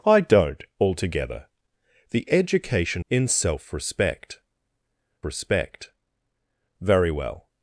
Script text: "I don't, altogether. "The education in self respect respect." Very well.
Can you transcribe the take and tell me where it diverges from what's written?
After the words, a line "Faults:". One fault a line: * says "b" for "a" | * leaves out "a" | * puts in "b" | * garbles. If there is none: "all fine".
"I don't, altogether. "The education in self respect respect." Very well.
Faults:
all fine